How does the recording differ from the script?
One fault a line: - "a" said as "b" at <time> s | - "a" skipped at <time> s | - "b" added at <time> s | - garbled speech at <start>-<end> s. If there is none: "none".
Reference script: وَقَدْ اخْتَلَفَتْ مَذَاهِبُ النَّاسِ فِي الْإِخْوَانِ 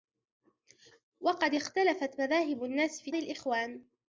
none